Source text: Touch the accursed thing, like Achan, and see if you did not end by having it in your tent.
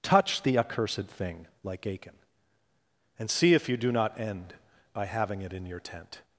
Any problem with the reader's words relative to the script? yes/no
yes